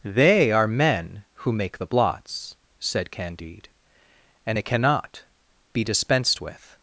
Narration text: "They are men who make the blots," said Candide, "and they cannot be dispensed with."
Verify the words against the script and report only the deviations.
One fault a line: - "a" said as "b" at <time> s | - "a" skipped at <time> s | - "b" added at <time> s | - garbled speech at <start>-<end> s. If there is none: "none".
- "they" said as "it" at 4.6 s